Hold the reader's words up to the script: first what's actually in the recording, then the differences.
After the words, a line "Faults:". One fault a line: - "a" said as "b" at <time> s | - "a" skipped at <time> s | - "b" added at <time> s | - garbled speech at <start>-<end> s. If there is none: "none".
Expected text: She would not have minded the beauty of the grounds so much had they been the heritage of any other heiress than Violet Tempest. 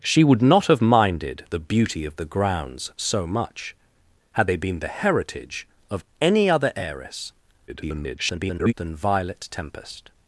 She would not have minded the beauty of the grounds so much had they been the heritage of any other heiress [garbled] than Violet Tempest.
Faults:
- garbled speech at 7.7-8.7 s